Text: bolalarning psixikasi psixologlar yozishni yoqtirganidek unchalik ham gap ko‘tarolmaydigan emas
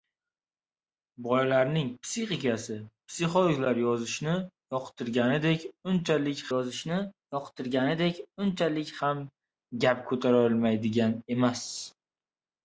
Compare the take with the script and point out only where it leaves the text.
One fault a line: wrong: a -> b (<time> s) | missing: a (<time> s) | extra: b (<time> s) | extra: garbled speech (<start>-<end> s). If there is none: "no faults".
extra: yozishni yoqtirganidek unchalik (6.5 s)